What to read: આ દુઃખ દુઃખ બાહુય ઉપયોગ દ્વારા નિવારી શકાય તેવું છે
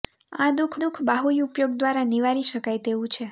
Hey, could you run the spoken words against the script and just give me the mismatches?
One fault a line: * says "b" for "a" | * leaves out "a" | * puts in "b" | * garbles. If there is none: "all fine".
all fine